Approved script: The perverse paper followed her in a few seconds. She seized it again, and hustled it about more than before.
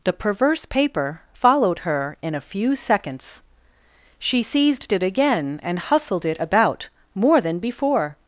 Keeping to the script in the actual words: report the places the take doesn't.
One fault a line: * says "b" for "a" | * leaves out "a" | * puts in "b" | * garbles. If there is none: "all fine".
all fine